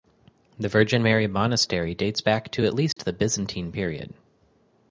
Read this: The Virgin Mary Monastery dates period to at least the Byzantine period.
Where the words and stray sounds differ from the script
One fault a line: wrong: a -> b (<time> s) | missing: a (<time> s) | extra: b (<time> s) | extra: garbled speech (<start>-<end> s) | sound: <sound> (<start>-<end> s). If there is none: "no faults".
wrong: period -> back (2.2 s)
sound: dropout (2.9-3.0 s)